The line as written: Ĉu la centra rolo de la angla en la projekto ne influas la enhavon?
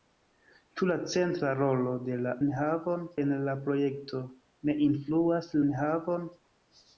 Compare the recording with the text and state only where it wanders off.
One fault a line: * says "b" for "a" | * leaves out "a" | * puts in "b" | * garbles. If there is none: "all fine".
* says "enhavon" for "angla"
* leaves out "la"